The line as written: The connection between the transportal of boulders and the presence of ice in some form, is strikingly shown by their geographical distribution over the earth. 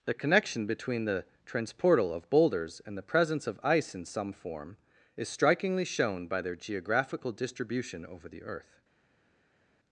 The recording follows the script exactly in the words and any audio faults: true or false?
true